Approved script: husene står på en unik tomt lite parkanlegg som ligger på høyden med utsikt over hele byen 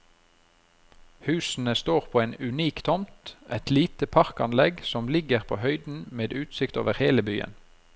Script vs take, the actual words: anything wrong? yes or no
yes